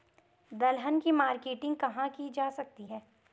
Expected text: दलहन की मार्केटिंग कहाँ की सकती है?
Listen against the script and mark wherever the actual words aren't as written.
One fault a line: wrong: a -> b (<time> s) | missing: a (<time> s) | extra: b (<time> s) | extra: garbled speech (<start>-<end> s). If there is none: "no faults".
extra: जा (2.3 s)